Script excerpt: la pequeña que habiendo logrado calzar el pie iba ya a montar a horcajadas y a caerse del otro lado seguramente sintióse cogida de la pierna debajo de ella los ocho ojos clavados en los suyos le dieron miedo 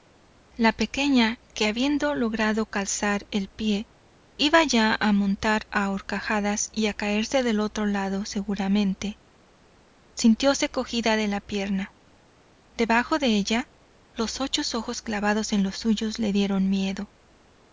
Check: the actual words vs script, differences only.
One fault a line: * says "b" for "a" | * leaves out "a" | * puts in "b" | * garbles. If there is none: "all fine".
all fine